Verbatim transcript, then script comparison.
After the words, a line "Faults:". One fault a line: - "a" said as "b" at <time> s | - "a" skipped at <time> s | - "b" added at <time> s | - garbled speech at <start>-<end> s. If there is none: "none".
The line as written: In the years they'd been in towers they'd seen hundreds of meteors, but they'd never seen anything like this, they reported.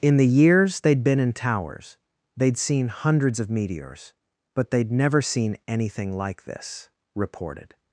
In the years they'd been in towers they'd seen hundreds of meteors, but they'd never seen anything like this, reported.
Faults:
- "they" skipped at 6.9 s